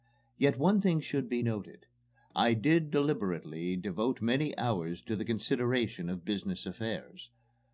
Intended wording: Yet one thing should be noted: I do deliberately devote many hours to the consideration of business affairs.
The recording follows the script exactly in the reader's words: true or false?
false